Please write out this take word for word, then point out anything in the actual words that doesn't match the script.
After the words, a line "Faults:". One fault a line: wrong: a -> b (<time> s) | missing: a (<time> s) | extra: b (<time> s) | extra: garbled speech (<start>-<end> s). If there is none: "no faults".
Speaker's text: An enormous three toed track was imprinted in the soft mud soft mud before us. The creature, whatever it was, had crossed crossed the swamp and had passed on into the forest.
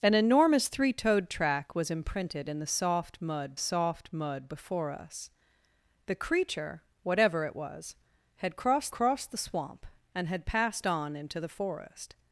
An enormous three toed track was imprinted in the soft mud soft mud before us. The creature, whatever it was, had crossed crossed the swamp and had passed on into the forest.
Faults:
no faults